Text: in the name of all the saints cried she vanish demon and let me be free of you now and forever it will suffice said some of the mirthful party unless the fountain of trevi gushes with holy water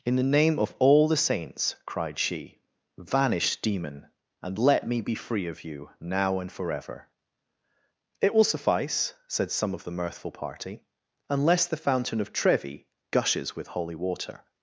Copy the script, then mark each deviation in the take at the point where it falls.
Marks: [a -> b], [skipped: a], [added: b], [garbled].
in the name of all the saints cried she vanish demon and let me be free of you now and forever it will suffice said some of the mirthful party unless the fountain of trevi gushes with holy water